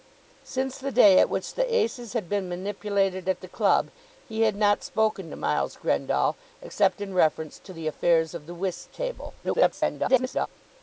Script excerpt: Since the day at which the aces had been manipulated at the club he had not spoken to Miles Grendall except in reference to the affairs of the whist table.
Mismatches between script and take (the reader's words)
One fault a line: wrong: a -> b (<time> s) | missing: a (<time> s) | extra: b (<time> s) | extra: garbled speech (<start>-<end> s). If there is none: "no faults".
extra: garbled speech (9.4-10.5 s)